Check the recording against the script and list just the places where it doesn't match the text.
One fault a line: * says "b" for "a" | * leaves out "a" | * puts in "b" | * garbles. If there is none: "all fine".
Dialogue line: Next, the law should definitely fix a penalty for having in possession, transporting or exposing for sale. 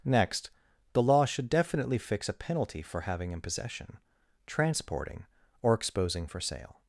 all fine